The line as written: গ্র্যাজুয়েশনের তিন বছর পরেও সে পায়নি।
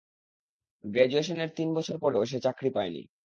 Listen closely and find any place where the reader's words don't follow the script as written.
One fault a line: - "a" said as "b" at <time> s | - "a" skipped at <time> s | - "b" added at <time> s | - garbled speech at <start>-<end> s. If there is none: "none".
- "চাকরি" added at 2.4 s